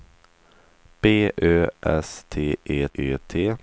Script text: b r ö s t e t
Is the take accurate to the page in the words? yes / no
no